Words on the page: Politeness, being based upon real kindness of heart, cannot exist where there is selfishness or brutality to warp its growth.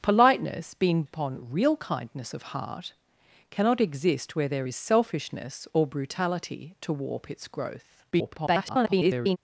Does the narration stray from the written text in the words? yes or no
yes